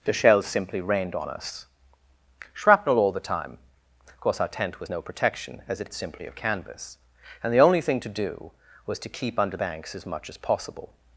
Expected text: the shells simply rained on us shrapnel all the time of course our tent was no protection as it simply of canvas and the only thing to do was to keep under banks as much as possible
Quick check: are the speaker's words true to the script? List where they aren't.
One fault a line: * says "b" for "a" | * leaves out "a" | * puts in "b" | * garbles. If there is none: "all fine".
all fine